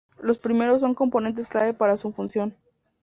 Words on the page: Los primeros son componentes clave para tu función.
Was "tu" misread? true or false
true